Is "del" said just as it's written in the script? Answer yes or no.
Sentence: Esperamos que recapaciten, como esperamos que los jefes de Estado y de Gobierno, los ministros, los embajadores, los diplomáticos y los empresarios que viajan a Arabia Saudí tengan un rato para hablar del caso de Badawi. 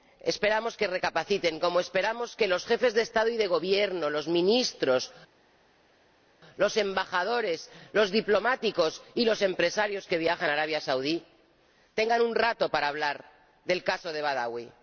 yes